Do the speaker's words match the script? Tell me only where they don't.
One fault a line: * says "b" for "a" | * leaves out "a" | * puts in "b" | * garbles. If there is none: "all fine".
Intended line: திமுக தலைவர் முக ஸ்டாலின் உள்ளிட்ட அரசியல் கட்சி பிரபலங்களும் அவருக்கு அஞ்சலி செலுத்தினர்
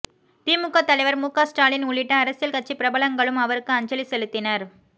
all fine